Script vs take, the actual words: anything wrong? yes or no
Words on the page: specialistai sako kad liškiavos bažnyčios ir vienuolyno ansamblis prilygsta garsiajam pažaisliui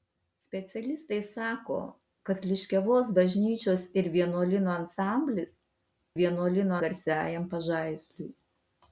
yes